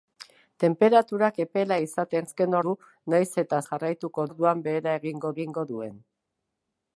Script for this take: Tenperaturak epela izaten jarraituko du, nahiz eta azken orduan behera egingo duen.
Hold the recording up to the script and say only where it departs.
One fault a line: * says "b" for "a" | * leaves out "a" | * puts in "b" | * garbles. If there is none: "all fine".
* says "azken" for "jarraituko"
* says "jarraituko" for "azken"
* puts in "egingo"